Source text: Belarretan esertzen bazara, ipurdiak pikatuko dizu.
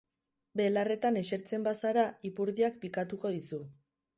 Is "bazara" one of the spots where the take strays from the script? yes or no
no